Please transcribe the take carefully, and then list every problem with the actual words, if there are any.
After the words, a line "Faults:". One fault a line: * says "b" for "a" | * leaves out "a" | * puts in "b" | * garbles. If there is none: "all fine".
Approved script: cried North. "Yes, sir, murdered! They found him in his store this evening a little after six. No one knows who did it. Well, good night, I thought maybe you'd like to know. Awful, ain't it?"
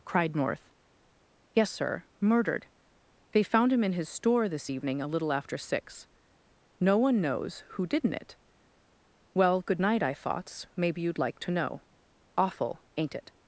cried North. "Yes, sir, murdered! They found him in his store this evening a little after six. No one knows who didn't it. Well, good night, I thoughts maybe you'd like to know. Awful, ain't it?"
Faults:
* says "didn't" for "did"
* says "thoughts" for "thought"